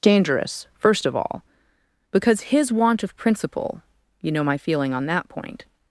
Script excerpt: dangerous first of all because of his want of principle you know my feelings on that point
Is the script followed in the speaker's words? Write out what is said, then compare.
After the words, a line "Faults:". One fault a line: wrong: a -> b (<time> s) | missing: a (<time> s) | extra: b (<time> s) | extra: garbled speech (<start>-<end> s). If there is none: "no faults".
dangerous first of all because his want of principle you know my feeling on that point
Faults:
missing: of (2.4 s)
wrong: feelings -> feeling (4.6 s)